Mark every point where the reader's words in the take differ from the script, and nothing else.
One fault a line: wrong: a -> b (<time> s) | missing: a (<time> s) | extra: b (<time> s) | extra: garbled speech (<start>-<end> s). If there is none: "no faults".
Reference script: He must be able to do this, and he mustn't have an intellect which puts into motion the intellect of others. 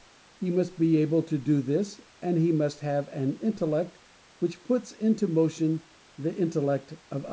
wrong: mustn't -> must (2.5 s)